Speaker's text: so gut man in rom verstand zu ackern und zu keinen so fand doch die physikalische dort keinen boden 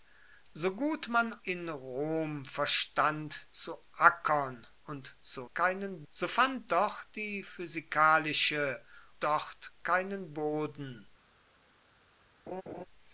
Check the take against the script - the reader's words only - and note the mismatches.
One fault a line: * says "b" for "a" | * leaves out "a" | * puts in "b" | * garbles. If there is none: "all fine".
all fine